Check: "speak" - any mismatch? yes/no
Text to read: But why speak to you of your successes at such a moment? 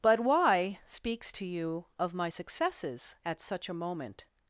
yes